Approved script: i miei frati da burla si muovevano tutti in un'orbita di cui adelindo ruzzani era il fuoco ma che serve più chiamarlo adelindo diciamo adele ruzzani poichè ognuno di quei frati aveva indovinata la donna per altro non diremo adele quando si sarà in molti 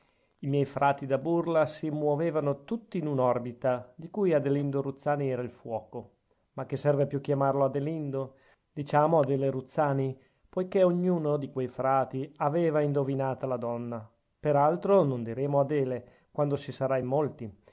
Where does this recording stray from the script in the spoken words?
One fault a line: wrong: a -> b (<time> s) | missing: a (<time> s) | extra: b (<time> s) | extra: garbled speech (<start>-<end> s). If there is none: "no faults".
no faults